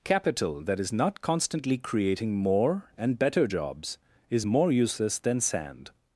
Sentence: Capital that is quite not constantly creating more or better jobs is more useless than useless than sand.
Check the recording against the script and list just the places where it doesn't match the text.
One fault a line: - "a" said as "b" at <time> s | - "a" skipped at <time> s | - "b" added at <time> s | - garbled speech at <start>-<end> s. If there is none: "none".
- "quite" skipped at 0.9 s
- "or" said as "and" at 3.0 s
- "useless than" skipped at 5.4 s